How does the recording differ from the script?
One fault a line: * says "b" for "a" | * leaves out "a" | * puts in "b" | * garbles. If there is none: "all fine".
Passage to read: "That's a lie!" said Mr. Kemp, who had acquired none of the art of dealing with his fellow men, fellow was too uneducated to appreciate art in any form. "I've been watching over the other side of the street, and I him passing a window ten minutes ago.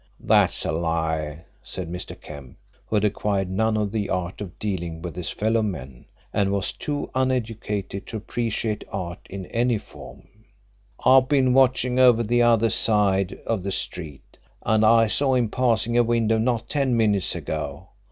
* says "and" for "fellow"
* puts in "saw"
* puts in "not"